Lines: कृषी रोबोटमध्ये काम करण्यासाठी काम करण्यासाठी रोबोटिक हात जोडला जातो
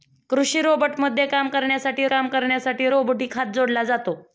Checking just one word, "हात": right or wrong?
right